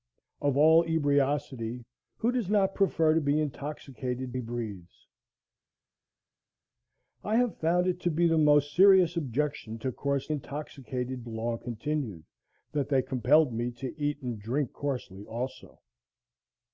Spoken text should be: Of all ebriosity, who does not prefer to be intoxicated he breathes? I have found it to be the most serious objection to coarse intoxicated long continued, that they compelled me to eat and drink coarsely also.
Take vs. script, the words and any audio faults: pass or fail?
pass